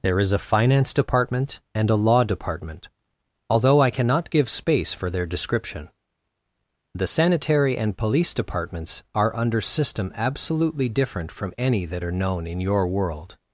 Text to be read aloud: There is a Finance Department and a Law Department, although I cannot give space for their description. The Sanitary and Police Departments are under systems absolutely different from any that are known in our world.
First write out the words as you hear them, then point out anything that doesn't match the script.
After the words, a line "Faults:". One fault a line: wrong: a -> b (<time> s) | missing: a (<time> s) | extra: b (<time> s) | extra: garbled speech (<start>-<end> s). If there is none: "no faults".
There is a Finance Department and a Law Department, although I cannot give space for their description. The Sanitary and Police Departments are under system absolutely different from any that are known in your world.
Faults:
wrong: systems -> system (9.6 s)
wrong: our -> your (12.6 s)